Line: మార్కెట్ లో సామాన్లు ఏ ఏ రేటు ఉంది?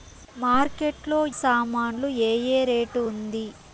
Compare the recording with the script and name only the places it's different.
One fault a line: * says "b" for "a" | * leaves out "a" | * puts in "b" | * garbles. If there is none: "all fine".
all fine